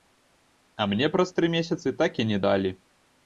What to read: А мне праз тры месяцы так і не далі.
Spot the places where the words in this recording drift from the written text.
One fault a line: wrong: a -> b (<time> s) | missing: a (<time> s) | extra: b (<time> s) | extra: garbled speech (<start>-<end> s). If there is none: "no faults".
no faults